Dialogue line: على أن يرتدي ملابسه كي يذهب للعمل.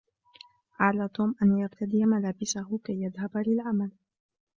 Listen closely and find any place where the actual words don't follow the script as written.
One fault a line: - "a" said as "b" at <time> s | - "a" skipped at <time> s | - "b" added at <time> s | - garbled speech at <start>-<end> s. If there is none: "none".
- "توم" added at 1.1 s